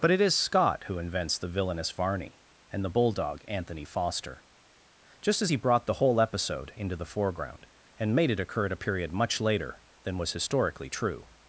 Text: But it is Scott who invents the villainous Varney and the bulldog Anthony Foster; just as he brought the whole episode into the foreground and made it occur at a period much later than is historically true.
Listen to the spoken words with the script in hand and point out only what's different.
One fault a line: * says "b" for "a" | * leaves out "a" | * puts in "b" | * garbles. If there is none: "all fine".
* says "was" for "is"